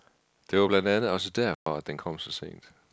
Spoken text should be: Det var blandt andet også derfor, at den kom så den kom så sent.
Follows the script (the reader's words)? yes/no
no